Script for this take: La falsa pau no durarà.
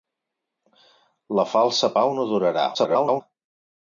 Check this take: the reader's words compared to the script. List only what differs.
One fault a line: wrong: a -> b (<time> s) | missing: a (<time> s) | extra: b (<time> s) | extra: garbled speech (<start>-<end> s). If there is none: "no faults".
extra: garbled speech (2.7-3.2 s)